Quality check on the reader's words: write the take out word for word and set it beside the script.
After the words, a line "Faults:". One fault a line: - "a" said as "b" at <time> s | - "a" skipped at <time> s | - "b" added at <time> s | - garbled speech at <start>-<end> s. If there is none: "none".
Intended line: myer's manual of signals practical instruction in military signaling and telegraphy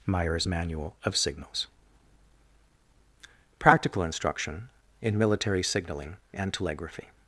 myer's manual of signals practical instruction in military signaling and telegraphy
Faults:
none